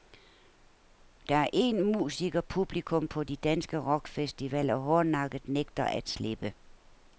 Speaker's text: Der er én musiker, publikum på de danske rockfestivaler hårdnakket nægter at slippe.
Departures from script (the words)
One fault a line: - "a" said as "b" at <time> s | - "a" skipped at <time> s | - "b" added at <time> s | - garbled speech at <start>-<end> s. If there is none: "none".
none